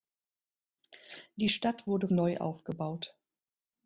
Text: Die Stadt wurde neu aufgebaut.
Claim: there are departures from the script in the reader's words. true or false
false